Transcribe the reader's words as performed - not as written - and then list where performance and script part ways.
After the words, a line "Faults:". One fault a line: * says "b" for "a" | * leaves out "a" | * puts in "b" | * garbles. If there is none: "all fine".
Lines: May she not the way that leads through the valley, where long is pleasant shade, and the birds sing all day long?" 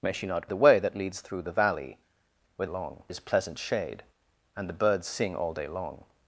May she not the way that leads through the valley, where long is pleasant shade, and the birds sing all day long?"
Faults:
all fine